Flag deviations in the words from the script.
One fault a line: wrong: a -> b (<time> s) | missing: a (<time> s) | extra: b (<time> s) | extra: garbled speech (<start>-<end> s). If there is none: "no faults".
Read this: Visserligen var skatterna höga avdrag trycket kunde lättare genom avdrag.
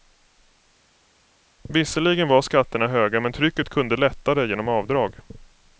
wrong: avdrag -> men (3.2 s)